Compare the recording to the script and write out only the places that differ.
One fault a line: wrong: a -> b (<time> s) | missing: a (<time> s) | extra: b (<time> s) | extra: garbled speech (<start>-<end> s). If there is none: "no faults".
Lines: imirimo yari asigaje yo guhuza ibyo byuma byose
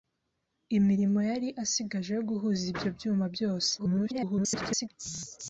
extra: garbled speech (3.8-4.9 s)